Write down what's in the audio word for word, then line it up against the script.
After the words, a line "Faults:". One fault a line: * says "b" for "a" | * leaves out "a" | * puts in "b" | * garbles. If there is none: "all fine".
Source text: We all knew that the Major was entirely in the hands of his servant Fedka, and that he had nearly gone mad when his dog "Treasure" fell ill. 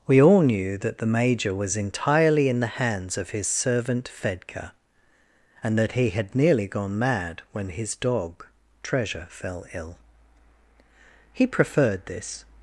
We all knew that the Major was entirely in the hands of his servant Fedka, and that he had nearly gone mad when his dog "Treasure" fell ill. He preferred this
Faults:
* puts in "He preferred this"